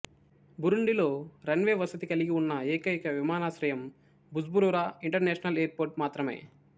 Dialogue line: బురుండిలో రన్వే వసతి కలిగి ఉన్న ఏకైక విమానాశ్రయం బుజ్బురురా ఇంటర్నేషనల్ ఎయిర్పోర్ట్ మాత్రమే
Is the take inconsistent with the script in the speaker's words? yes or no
no